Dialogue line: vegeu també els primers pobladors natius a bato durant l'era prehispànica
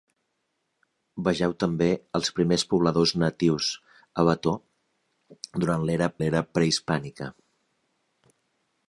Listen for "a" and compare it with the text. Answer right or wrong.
right